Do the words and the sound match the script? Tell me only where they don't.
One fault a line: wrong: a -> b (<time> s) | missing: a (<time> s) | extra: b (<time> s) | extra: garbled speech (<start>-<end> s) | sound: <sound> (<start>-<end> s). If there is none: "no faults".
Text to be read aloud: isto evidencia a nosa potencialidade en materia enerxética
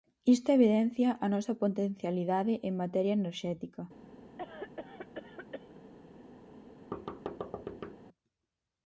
sound: cough (4.4-5.8 s)
sound: thud (6.9-8.0 s)